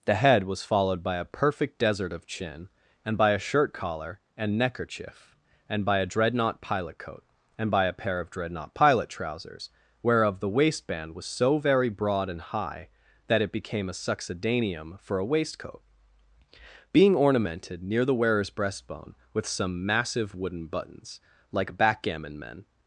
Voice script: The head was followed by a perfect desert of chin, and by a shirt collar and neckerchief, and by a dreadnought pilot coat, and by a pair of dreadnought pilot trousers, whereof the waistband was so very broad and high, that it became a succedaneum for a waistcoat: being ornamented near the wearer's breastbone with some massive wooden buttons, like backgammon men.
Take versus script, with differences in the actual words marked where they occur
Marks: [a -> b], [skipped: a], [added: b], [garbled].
The head was followed by a perfect desert of chin, and by a shirt collar and neckerchief, and by a dreadnought pilot coat, and by a pair of dreadnought pilot trousers, whereof the waistband was so very broad and high, that it became a succedaneum for a waistcoat: being ornamented near the wearer's breastbone with some massive wooden buttons, like backgammon men.